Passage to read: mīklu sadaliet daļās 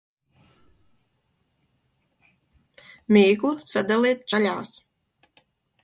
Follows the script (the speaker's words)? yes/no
yes